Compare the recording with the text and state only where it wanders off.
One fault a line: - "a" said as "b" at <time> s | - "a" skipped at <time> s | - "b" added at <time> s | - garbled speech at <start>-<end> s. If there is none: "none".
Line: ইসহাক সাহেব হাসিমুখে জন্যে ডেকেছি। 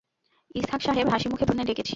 none